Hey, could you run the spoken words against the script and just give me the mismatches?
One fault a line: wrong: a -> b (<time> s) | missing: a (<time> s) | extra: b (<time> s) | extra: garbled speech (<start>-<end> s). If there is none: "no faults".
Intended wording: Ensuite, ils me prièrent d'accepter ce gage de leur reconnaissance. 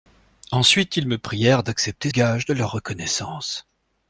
missing: ce (2.1 s)